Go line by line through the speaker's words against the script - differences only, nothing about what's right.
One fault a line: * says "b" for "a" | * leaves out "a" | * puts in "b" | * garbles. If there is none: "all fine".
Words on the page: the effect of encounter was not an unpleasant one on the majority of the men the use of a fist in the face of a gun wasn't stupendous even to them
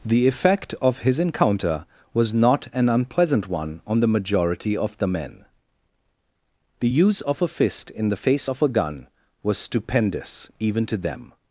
* puts in "his"
* says "was" for "wasn't"